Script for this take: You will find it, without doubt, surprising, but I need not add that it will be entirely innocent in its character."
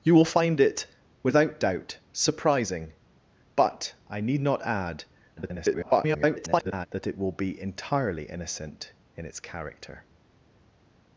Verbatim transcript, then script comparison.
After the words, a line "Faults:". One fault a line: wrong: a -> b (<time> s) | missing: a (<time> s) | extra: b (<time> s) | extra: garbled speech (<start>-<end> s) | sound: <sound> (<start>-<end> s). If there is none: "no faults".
You will find it, without doubt, surprising, but I need not add [garbled] that it will be entirely innocent in its character."
Faults:
extra: garbled speech (5.4-6.9 s)